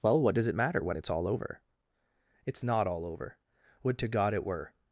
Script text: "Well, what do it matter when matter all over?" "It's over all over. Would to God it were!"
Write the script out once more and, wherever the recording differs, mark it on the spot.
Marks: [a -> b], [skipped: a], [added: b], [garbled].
"Well, what [do -> does] it matter when [matter -> it's] all over?" "It's [over -> not] all over. Would to God it were!"